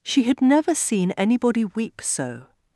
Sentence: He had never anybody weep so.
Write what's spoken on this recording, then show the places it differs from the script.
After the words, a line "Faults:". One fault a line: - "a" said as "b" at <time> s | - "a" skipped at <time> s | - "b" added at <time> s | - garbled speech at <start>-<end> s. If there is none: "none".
She had never seen anybody weep so.
Faults:
- "He" said as "She" at 0.0 s
- "seen" added at 0.7 s